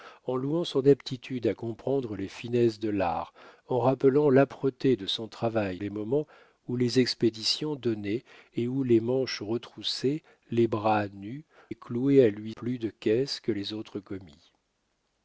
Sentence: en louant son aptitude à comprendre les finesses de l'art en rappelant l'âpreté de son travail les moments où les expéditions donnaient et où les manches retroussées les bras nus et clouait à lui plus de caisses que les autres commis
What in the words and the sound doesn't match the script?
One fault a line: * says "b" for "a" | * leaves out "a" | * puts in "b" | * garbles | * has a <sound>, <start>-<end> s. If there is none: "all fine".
all fine